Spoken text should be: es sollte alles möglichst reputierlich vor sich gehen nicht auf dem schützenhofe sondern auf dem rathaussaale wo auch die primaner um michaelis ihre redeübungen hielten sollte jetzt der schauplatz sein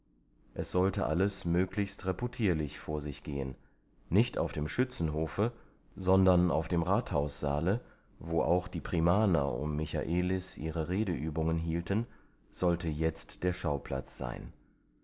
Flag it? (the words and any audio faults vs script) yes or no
no